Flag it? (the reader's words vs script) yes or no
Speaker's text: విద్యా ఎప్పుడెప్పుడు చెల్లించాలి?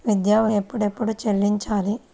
no